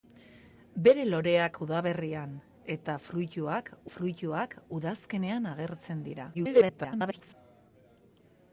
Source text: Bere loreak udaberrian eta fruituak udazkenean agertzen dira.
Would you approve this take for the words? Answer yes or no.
no